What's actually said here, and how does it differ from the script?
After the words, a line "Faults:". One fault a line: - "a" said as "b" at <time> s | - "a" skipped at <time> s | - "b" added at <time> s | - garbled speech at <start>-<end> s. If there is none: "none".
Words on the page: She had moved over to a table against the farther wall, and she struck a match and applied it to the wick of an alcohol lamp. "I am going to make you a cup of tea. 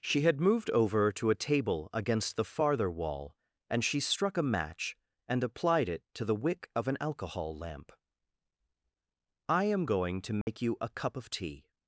She had moved over to a table against the farther wall, and she struck a match and applied it to the wick of an alcohol lamp. "I am going to make you a cup of tea.
Faults:
none